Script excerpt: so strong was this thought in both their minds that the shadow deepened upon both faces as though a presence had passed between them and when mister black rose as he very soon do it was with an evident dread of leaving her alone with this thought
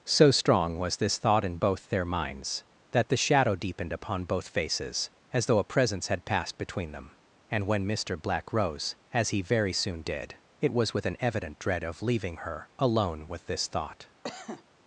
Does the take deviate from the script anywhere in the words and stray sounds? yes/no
yes